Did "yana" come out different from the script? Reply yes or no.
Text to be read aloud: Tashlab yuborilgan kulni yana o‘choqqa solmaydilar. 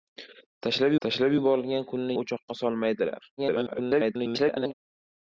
yes